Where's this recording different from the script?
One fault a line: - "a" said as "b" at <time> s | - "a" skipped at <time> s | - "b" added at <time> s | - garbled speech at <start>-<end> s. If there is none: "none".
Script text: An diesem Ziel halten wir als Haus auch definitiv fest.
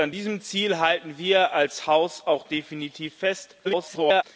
- garbled speech at 3.6-4.2 s